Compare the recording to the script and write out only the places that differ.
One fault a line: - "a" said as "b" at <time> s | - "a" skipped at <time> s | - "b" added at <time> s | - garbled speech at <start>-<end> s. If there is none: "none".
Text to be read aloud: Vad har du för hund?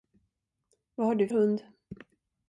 - "för" skipped at 1.3 s